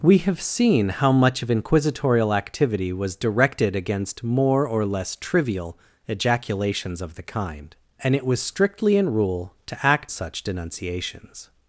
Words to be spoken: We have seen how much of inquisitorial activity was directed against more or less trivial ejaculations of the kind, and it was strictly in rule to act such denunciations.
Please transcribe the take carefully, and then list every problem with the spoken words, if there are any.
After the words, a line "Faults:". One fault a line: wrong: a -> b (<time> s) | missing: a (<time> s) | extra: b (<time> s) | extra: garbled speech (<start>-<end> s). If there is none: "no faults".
We have seen how much of inquisitorial activity was directed against more or less trivial ejaculations of the kind, and it was strictly in rule to act such denunciations.
Faults:
no faults